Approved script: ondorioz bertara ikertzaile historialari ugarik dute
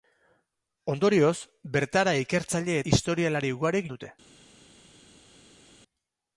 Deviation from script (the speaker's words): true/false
false